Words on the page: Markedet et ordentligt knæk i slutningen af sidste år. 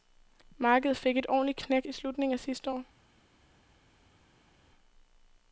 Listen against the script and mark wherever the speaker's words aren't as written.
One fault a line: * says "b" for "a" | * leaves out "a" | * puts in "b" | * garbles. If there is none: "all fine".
* puts in "fik"